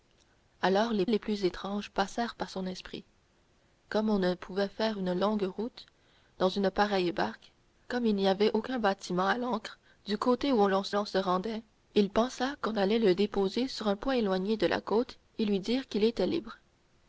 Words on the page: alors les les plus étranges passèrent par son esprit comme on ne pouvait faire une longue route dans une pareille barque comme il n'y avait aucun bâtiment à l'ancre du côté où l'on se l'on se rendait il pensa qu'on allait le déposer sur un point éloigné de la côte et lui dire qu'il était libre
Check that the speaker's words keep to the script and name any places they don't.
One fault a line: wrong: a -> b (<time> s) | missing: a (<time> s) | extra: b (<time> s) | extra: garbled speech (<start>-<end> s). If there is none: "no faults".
no faults